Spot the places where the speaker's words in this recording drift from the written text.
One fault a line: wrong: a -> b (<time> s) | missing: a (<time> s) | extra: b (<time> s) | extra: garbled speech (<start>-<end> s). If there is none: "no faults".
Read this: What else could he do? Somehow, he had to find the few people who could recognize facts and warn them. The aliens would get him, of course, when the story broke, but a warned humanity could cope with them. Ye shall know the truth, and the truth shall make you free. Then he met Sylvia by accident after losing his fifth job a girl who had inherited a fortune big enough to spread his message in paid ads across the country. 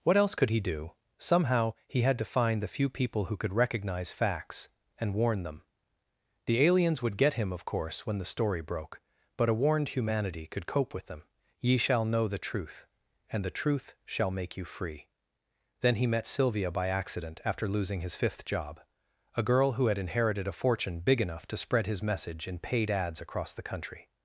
no faults